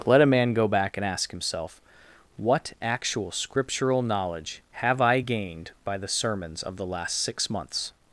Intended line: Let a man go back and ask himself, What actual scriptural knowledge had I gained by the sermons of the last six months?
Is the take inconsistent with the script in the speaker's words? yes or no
yes